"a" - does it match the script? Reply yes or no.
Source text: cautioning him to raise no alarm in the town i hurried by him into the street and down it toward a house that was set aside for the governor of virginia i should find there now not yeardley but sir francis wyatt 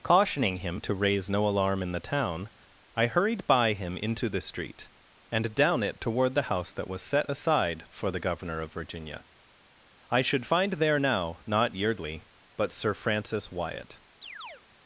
no